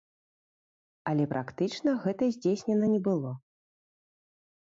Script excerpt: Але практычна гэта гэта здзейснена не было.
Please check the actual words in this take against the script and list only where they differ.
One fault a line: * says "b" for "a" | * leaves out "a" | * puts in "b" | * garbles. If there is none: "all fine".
* leaves out "гэта"